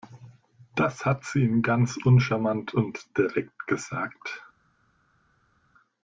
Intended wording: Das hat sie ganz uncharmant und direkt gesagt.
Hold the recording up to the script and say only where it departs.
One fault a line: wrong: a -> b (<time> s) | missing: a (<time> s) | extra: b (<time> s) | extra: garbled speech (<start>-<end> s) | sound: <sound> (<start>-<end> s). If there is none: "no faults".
extra: ihm (1.4 s)